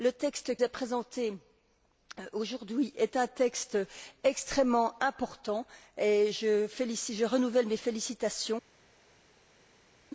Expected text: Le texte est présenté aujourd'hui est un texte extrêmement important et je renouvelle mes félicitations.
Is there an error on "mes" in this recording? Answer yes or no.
no